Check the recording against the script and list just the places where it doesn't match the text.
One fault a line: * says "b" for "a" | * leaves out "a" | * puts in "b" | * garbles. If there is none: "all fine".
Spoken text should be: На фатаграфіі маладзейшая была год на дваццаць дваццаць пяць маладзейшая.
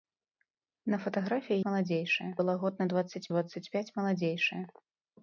all fine